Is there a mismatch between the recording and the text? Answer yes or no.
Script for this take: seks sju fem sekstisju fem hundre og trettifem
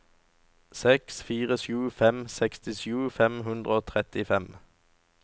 yes